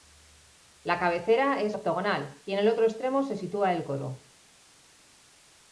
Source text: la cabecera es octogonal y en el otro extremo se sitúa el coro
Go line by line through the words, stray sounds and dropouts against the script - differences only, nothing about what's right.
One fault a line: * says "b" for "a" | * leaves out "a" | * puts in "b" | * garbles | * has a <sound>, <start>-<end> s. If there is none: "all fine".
all fine